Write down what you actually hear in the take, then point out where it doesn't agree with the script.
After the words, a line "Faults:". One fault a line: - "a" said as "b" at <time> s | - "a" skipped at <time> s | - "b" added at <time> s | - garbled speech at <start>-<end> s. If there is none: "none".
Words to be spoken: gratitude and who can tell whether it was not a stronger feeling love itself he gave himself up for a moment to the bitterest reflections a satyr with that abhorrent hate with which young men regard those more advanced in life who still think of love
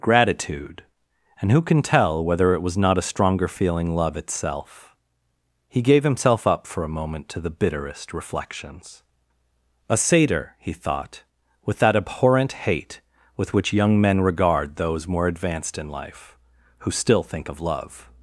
gratitude and who can tell whether it was not a stronger feeling love itself he gave himself up for a moment to the bitterest reflections a satyr he thought with that abhorrent hate with which young men regard those more advanced in life who still think of love
Faults:
- "he thought" added at 10.6 s